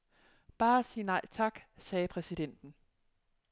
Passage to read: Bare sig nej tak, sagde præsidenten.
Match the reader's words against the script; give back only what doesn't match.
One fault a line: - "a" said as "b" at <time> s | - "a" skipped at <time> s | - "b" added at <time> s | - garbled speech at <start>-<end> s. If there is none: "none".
none